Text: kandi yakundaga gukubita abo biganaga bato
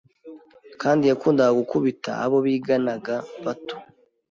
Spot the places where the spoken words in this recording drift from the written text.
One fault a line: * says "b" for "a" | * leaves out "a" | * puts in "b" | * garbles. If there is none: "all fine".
all fine